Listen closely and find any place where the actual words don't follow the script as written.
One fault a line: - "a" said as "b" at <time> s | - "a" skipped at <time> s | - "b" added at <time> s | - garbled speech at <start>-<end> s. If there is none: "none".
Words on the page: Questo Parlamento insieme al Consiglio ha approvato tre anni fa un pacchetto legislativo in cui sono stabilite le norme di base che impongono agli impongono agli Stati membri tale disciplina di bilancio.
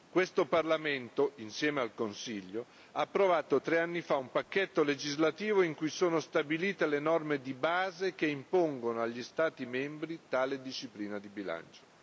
- "impongono agli" skipped at 9.2 s